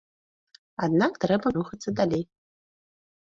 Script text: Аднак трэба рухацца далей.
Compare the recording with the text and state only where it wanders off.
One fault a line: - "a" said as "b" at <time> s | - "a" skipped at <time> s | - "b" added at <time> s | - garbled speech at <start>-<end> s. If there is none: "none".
none